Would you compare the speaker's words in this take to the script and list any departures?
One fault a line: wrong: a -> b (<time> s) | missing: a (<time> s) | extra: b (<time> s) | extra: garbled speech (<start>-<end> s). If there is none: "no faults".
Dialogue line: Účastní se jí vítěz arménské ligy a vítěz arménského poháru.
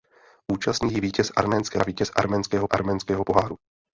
missing: se (0.9 s)
missing: ligy (1.8 s)
extra: arménského (2.7 s)